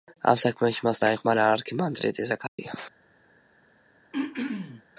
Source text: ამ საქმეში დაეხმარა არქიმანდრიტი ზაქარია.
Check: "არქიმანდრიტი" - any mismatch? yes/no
no